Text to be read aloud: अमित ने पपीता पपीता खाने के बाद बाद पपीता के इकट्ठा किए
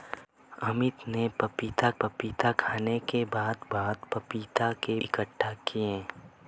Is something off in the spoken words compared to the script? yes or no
no